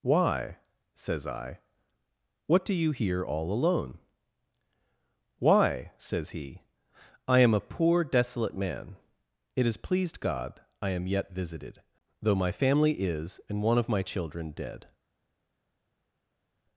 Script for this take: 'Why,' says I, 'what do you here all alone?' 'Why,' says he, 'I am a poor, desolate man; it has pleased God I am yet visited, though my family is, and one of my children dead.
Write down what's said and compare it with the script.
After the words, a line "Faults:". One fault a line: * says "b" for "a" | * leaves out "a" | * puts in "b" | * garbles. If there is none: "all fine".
'Why,' says I, 'what do you here all alone?' 'Why,' says he, 'I am a poor, desolate man; it has pleased God I am yet visited, though my family is, and one of my children dead.
Faults:
all fine